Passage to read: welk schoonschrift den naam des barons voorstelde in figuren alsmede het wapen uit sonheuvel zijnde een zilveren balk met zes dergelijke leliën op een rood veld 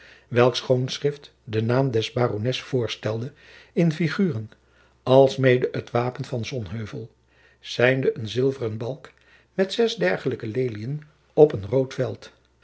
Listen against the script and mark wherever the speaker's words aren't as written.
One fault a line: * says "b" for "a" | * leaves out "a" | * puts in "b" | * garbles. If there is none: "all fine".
* says "van" for "uit"